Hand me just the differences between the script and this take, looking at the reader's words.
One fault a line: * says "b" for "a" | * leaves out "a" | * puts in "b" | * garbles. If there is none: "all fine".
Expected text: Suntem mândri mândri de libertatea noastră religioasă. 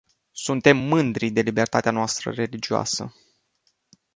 * leaves out "mândri"